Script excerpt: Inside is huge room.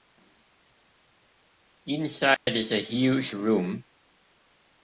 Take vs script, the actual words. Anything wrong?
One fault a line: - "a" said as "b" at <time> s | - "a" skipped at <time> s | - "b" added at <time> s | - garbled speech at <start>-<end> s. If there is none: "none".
- "a" added at 2.7 s